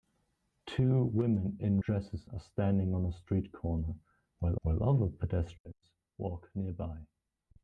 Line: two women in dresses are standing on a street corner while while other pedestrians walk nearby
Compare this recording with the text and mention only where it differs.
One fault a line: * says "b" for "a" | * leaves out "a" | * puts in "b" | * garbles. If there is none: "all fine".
all fine